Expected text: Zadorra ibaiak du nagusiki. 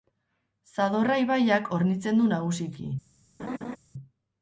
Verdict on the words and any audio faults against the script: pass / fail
fail